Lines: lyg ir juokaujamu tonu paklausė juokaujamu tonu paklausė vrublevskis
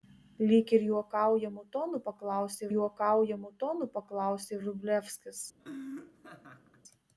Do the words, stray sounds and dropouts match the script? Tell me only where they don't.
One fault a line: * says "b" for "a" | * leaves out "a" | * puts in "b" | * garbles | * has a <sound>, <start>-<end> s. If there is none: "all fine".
* has a laugh, 5.6-6.8 s